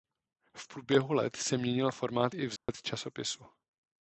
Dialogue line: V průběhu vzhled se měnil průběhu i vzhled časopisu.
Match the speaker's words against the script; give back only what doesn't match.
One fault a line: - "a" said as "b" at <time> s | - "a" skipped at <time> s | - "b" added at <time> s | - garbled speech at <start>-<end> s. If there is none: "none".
- "vzhled" said as "let" at 1.1 s
- "průběhu" said as "formát" at 1.9 s